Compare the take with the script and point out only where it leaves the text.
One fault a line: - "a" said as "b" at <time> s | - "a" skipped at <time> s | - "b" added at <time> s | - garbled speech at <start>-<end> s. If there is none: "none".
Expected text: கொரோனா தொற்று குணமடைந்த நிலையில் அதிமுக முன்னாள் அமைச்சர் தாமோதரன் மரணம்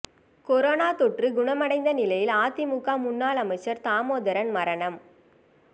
none